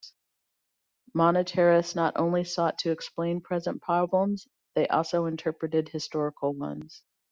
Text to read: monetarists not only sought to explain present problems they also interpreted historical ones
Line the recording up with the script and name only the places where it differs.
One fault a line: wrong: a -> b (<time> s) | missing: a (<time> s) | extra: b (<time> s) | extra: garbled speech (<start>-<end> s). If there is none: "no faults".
no faults